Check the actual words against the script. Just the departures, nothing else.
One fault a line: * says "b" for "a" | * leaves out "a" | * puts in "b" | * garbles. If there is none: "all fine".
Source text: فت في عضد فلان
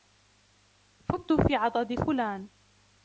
all fine